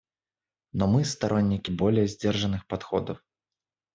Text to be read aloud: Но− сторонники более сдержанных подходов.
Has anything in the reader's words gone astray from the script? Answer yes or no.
yes